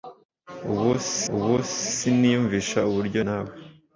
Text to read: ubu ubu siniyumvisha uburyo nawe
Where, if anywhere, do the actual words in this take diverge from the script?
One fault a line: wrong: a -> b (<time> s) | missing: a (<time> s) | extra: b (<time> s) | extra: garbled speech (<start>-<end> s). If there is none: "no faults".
no faults